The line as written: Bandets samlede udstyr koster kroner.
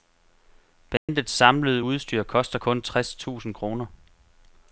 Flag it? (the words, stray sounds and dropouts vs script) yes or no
yes